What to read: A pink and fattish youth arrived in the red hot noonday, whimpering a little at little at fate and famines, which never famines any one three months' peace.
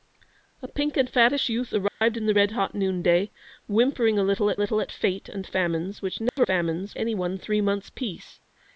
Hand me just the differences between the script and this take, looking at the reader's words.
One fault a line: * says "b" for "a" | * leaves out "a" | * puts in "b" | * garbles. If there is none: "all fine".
all fine